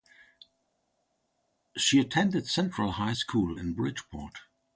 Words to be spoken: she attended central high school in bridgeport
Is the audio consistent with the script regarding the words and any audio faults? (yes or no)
yes